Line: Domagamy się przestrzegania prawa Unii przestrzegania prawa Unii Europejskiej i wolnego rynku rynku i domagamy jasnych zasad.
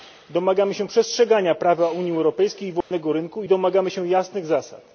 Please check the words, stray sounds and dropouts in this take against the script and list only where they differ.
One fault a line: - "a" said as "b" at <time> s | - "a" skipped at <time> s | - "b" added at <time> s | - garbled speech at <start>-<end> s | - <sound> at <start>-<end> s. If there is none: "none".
- "przestrzegania prawa Unii" skipped at 2.1 s
- dropout at 2.8-2.9 s
- "rynku" skipped at 3.4 s
- "się" added at 3.9 s